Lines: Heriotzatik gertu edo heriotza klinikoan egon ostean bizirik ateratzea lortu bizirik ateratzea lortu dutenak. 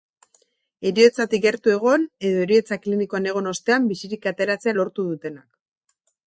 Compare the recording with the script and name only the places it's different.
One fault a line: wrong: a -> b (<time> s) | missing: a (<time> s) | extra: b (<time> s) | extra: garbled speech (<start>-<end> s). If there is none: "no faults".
extra: egon (1.7 s)
missing: bizirik ateratzea lortu (5.1 s)